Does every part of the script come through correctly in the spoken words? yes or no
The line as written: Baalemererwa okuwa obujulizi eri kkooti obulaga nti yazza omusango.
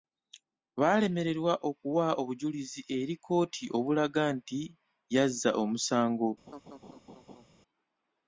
yes